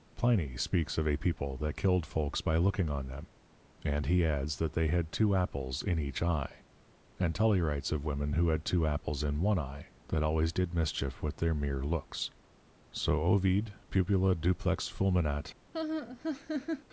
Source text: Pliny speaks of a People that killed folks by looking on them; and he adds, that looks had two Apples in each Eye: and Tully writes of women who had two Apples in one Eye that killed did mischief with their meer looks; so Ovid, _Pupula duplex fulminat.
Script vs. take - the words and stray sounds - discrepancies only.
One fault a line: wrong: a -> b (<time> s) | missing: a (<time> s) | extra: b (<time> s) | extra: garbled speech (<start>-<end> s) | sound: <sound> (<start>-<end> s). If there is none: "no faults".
wrong: looks -> they (4.7 s)
wrong: killed -> always (10.2 s)
sound: laugh (15.7-16.9 s)